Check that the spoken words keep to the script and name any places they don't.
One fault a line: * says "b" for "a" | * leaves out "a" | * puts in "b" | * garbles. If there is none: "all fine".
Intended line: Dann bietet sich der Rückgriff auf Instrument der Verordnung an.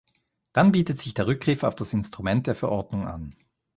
* puts in "das"